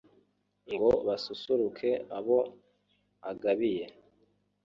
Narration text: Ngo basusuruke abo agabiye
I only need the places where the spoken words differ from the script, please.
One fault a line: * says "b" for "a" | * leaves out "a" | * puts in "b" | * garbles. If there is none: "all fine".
all fine